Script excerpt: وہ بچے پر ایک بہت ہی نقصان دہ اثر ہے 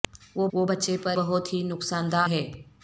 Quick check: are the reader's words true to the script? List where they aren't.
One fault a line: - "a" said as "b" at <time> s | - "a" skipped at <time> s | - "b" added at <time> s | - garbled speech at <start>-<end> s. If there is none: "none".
- "وہ" added at 0.5 s
- "ایک" skipped at 1.2 s
- "اثر" skipped at 2.2 s